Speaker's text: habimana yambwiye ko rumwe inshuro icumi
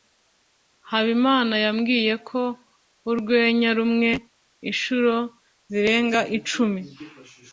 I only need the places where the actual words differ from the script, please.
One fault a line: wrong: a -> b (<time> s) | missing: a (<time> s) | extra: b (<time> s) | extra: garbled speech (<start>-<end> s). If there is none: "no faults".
extra: urwenya (3.1 s)
extra: zirenga (5.7 s)